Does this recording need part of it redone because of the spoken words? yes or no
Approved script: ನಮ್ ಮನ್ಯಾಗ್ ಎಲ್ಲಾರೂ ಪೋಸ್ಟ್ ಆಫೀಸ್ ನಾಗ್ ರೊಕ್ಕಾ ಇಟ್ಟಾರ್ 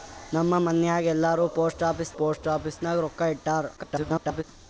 yes